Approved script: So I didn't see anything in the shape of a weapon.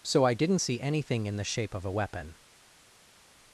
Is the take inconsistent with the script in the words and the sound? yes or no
no